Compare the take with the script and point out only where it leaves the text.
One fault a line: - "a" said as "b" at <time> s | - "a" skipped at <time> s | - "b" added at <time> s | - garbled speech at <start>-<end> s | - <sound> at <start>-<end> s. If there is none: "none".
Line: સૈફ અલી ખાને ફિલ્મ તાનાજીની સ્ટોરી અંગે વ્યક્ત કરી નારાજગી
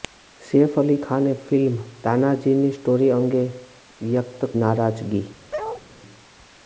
- "કરી" skipped at 4.5 s
- bark at 5.5-5.8 s